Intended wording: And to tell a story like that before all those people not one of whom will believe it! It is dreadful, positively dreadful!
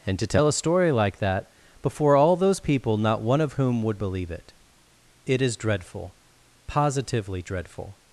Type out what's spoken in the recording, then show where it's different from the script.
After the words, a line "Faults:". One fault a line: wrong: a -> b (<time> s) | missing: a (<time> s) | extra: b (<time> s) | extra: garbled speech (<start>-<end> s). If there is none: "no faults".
And to tell a story like that before all those people not one of whom would believe it! It is dreadful, positively dreadful!
Faults:
wrong: will -> would (3.8 s)